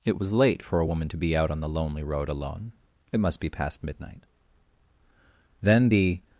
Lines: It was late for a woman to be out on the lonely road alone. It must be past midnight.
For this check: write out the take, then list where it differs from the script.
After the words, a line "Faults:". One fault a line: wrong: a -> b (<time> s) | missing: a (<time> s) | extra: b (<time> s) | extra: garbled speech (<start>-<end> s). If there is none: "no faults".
It was late for a woman to be out on the lonely road alone. It must be past midnight. Then the
Faults:
extra: Then the (5.6 s)